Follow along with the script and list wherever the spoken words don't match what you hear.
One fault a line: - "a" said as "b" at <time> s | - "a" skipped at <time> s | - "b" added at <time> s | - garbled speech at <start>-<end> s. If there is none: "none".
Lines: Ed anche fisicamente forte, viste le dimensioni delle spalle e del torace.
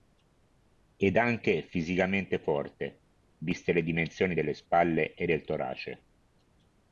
none